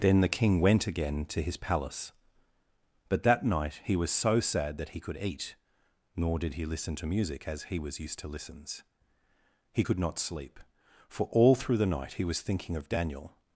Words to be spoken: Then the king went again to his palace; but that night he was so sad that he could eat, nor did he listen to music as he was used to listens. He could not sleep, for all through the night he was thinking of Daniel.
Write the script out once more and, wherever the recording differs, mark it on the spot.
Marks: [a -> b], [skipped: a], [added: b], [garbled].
Then the king went again to his palace; but that night he was so sad that he could eat, nor did he listen to music as he was used to listens. He could not sleep, for all through the night he was thinking of Daniel.